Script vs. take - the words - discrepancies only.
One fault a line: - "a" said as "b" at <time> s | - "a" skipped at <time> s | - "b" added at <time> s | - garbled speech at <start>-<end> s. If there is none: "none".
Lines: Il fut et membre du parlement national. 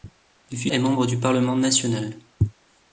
none